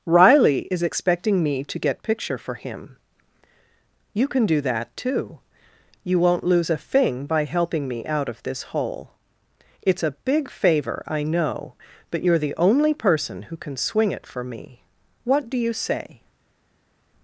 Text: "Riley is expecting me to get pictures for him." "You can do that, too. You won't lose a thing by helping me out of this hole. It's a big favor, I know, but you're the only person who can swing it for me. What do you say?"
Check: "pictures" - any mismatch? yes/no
yes